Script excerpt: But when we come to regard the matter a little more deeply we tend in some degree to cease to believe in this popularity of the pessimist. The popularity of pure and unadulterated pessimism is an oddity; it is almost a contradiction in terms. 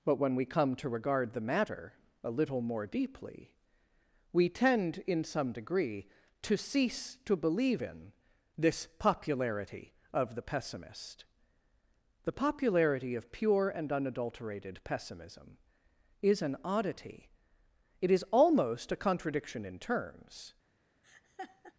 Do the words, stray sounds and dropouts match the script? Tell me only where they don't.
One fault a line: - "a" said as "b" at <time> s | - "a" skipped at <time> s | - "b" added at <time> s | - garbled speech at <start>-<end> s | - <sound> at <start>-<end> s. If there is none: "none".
- laugh at 21.0-21.7 s